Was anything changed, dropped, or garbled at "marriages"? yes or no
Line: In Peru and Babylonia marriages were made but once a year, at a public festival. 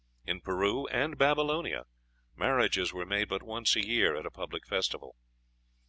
no